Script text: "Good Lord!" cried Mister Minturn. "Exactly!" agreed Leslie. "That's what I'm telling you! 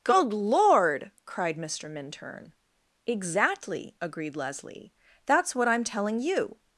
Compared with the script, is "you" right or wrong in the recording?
right